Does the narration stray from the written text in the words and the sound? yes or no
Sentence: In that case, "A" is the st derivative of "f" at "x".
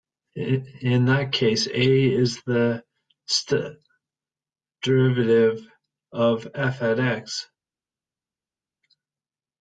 no